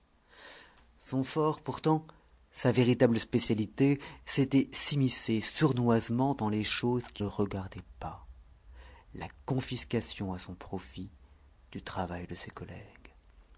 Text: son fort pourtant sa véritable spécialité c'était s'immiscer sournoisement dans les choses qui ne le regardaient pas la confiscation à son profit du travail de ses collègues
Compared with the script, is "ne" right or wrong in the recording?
wrong